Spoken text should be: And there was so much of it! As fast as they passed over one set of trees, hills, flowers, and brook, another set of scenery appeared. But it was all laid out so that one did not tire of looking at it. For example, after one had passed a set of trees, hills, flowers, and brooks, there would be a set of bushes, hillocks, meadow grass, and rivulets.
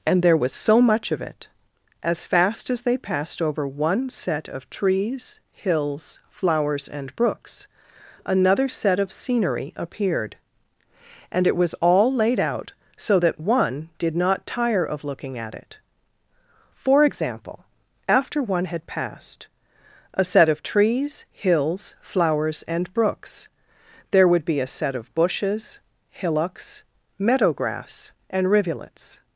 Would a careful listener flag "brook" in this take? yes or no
yes